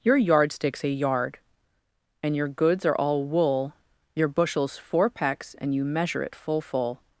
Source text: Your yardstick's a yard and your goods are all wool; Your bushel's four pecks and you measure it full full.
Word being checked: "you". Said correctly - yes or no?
yes